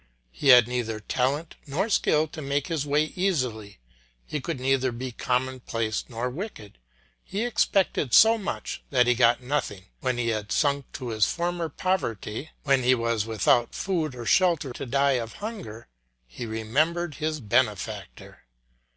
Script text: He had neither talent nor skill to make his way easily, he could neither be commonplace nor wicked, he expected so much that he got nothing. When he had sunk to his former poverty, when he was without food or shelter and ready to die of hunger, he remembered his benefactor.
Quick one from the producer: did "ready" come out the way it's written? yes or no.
no